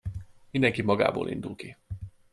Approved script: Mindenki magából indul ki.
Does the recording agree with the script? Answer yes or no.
yes